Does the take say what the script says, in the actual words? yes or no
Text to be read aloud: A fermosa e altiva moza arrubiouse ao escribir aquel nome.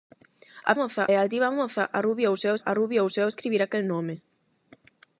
no